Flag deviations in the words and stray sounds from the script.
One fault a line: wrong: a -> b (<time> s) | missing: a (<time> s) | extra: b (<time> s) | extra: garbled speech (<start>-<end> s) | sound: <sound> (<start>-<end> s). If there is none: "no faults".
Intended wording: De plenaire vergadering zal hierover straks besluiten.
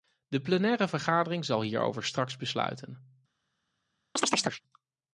sound: chirp (4.2-4.6 s)